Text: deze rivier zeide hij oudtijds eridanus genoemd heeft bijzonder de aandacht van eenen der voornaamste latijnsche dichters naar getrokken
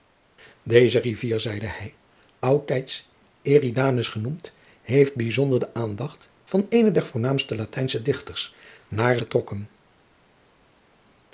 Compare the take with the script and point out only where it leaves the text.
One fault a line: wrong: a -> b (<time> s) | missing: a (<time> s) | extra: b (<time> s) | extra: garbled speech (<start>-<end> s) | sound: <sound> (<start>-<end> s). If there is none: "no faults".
no faults